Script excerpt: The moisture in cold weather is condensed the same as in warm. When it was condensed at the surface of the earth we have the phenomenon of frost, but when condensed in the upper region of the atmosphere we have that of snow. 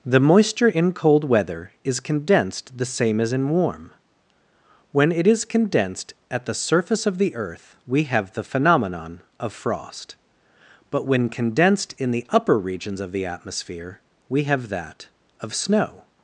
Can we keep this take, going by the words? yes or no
no